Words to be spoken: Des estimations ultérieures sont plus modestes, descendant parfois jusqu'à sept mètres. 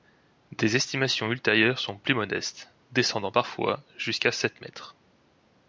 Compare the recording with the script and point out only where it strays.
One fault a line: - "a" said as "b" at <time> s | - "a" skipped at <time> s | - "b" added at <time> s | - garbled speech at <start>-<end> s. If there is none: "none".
none